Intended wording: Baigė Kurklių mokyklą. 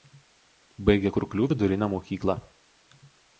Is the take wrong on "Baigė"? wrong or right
right